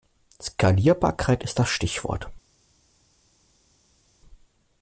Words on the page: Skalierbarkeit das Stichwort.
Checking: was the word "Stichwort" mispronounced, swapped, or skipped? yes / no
no